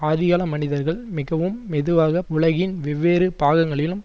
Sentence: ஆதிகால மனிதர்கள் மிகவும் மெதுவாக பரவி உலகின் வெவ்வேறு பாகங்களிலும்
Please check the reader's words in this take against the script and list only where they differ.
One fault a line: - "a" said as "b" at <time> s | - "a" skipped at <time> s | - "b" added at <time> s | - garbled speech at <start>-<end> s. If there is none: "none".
- "பரவி" skipped at 2.2 s